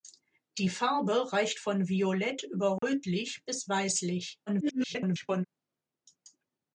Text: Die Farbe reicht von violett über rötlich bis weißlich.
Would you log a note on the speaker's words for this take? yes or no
yes